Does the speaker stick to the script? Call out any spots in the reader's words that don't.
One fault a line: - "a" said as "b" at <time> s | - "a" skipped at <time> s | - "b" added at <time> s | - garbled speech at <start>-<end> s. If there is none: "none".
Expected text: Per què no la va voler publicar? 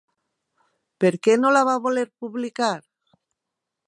none